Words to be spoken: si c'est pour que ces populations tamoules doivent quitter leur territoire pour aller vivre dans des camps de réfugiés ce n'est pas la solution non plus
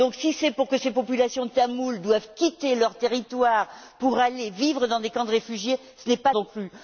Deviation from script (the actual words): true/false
true